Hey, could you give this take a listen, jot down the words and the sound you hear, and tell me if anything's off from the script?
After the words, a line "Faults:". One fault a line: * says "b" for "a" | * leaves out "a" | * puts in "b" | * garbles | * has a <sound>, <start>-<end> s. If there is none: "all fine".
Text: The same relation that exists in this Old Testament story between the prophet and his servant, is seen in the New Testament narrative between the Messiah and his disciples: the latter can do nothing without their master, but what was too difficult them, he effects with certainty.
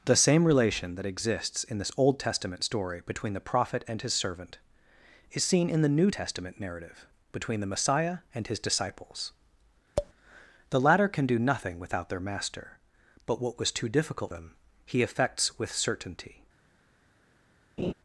The same relation that exists in this Old Testament story between the prophet and his servant, is seen in the New Testament narrative between the Messiah and his disciples: the latter can do nothing without their master, but what was too difficult them, he effects with certainty.
Faults:
* has a tap, 10.0-10.1 s
* has a laugh, 17.8-17.9 s